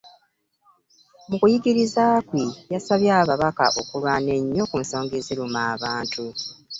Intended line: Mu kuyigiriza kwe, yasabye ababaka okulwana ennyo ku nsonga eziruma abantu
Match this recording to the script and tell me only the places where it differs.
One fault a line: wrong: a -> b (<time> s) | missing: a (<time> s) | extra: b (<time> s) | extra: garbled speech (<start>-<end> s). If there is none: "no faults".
no faults